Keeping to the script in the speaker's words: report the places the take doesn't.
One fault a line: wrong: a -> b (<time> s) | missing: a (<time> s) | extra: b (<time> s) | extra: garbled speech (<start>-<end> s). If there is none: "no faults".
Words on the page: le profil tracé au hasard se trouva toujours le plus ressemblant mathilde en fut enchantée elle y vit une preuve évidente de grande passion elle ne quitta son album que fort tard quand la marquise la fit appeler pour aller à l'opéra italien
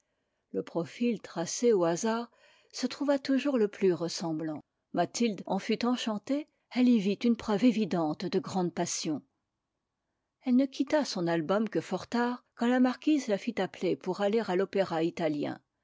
no faults